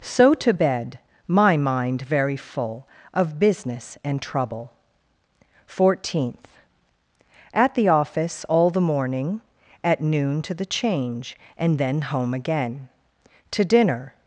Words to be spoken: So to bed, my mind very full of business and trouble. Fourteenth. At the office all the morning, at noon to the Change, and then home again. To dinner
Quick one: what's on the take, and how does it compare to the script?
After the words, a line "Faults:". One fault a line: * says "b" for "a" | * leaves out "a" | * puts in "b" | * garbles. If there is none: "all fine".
So to bed, my mind very full of business and trouble. Fourteenth. At the office all the morning, at noon to the Change, and then home again. To dinner
Faults:
all fine